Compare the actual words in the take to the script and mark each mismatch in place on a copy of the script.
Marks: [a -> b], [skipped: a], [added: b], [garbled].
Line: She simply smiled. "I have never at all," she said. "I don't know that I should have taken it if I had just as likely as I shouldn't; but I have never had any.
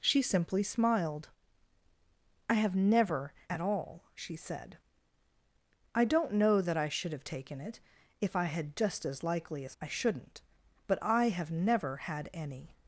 She simply smiled. "I have never at all," she said. "I don't know that I should have taken it if I had just as likely as I shouldn't; but I have never had any.